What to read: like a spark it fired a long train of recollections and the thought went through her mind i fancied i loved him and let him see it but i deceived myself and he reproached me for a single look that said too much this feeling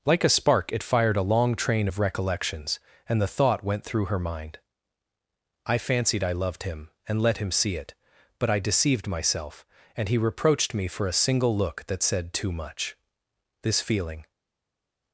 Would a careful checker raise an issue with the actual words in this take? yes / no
no